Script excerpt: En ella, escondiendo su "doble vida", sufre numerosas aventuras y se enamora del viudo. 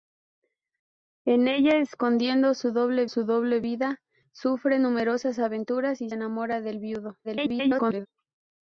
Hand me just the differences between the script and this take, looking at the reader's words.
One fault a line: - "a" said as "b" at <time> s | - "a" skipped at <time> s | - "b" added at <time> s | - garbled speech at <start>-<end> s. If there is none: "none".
- "su doble" added at 3.1 s
- "se" skipped at 6.1 s
- garbled speech at 7.2-8.1 s